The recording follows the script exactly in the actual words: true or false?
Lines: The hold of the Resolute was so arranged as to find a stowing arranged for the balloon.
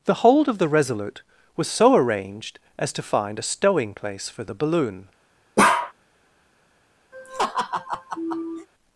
false